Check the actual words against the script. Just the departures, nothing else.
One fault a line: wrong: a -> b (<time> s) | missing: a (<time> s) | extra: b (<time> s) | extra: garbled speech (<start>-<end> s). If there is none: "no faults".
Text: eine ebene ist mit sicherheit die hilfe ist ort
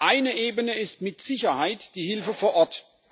wrong: ist -> vor (2.3 s)